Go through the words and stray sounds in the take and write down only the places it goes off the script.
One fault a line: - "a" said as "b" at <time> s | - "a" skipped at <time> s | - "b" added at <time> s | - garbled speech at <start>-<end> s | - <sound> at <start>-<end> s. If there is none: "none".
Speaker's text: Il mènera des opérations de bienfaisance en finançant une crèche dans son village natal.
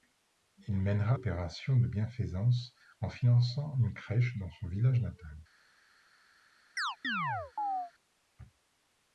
- "des" skipped at 1.2 s
- chirp at 6.8-7.9 s